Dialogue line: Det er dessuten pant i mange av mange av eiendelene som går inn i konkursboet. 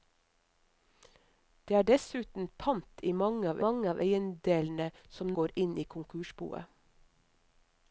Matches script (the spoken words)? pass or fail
pass